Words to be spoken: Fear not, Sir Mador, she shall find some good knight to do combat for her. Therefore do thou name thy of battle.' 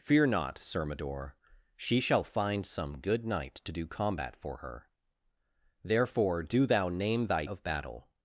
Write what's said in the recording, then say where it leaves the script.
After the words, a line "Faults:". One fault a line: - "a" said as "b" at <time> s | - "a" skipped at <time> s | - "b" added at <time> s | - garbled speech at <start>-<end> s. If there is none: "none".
Fear not, Sir Mador, she shall find some good knight to do combat for her. Therefore do thou name thy of battle.'
Faults:
none